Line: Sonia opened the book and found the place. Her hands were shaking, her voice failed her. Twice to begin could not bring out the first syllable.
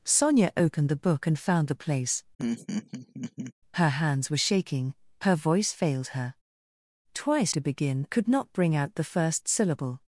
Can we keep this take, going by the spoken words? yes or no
yes